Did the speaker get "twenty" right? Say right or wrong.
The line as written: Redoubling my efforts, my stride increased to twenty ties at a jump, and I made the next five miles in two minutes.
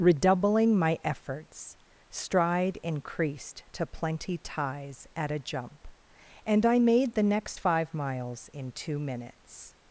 wrong